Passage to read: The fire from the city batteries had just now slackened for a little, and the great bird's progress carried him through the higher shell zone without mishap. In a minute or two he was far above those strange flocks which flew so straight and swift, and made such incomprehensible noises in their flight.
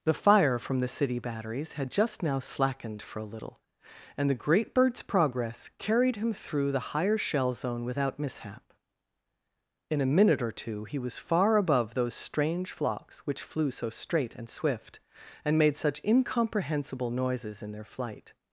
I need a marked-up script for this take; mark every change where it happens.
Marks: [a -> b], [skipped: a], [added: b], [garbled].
The fire from the city batteries had just now slackened for a little, and the great bird's progress carried him through the higher shell zone without mishap. In a minute or two he was far above those strange flocks which flew so straight and swift, and made such incomprehensible noises in their flight.